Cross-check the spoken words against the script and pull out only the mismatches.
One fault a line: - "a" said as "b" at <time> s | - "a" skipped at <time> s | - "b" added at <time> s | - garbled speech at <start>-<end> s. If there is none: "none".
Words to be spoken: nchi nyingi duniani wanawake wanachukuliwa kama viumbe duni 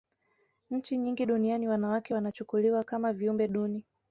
none